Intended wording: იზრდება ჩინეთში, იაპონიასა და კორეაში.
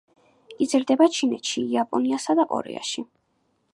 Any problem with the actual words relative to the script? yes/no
no